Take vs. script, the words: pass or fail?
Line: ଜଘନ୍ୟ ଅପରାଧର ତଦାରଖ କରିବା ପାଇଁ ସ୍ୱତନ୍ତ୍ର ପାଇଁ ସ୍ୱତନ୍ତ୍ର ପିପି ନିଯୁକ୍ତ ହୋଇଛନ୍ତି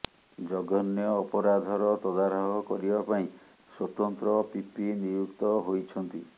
fail